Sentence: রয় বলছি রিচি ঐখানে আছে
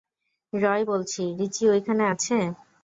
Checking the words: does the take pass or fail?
pass